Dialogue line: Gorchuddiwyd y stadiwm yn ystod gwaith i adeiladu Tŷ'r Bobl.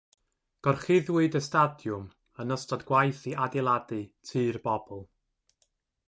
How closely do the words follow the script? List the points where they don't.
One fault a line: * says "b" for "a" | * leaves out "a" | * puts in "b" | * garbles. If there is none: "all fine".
all fine